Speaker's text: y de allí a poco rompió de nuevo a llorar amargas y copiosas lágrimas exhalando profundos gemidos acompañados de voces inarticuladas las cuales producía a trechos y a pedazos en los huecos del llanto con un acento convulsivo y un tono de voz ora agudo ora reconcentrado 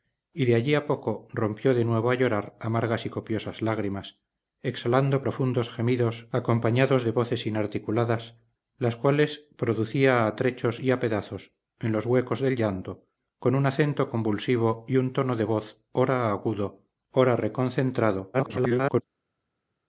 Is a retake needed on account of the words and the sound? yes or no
yes